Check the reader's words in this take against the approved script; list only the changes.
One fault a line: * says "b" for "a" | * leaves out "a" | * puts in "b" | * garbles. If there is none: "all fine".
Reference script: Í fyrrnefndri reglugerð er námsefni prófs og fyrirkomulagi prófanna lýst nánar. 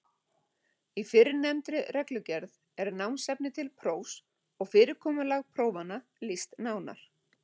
* puts in "til"